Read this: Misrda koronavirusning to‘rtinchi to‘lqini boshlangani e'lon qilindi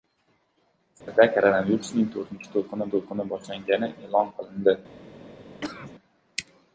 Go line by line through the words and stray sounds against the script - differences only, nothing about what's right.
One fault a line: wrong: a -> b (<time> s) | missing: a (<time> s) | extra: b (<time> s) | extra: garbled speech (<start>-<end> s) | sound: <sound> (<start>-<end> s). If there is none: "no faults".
sound: dropout (1.0-1.1 s)
extra: to‘lqini (2.9 s)
sound: cough (5.6-5.9 s)